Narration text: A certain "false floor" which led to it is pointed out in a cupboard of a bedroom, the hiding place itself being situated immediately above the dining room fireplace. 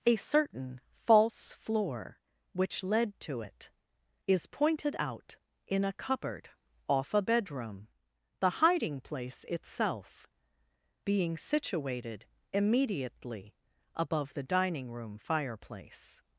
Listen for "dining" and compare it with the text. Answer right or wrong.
right